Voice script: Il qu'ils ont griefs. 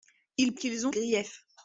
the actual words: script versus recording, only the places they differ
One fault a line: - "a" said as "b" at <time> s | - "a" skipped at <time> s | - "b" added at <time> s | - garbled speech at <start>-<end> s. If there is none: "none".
none